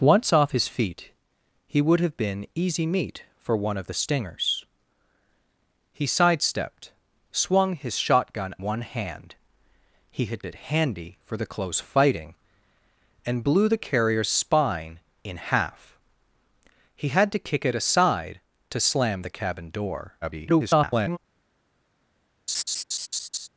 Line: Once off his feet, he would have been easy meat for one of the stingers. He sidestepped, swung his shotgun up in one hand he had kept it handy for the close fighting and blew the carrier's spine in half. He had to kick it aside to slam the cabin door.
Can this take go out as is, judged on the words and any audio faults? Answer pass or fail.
fail